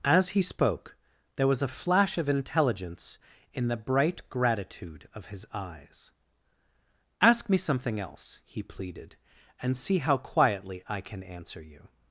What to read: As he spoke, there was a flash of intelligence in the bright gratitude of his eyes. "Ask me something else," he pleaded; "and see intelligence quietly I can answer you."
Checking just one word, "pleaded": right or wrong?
right